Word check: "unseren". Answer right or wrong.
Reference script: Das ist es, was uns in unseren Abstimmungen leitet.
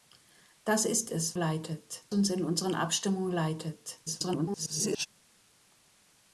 right